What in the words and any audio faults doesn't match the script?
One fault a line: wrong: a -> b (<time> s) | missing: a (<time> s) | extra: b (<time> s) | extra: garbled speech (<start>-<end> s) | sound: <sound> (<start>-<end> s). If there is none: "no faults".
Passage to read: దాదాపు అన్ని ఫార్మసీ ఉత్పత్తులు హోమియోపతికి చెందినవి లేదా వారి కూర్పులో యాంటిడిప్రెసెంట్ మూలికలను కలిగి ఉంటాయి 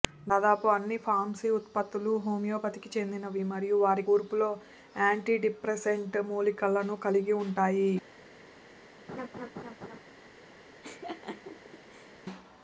wrong: లేదా -> మరియు (3.5 s)
sound: laugh (9.1-10.0 s)
sound: laugh (10.8-12.1 s)